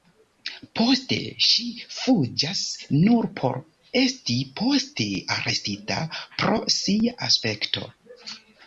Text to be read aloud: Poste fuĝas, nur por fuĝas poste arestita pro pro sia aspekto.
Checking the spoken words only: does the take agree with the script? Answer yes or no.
no